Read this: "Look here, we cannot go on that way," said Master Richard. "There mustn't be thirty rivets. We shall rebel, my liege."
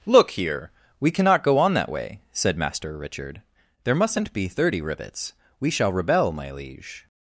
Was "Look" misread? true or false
false